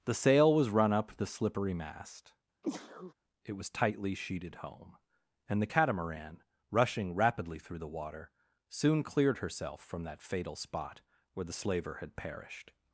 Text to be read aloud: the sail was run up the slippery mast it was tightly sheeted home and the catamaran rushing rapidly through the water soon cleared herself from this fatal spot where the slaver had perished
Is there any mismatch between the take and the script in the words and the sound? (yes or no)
yes